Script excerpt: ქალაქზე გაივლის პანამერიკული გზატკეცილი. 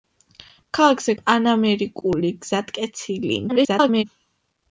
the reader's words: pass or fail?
fail